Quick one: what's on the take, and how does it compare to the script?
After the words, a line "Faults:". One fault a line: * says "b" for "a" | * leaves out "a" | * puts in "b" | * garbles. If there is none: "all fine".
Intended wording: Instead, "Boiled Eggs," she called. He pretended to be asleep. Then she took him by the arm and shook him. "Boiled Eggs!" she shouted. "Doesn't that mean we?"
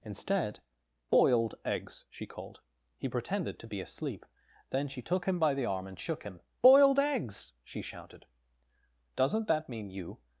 Instead, "Boiled Eggs," she called. He pretended to be asleep. Then she took him by the arm and shook him. "Boiled Eggs!" she shouted. "Doesn't that mean you?"
Faults:
* says "you" for "we"